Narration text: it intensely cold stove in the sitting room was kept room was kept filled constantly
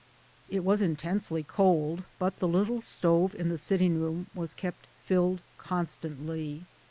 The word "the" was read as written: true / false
true